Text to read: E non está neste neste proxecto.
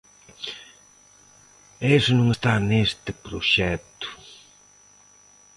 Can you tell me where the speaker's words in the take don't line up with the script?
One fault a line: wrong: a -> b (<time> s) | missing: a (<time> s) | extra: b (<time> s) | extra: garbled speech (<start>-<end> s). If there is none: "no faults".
extra: iso (2.0 s)
missing: neste (3.1 s)